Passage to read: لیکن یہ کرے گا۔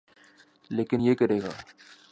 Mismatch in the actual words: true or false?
false